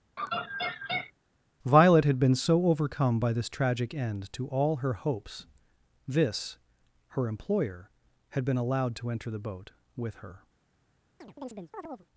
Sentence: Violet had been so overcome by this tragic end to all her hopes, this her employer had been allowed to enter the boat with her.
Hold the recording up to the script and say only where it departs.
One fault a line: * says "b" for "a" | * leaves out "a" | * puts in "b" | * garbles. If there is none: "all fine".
all fine